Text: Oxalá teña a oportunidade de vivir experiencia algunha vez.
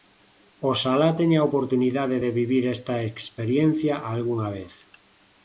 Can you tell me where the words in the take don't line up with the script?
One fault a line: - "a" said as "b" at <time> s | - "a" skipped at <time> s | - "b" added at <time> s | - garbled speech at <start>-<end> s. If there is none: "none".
- "esta" added at 2.8 s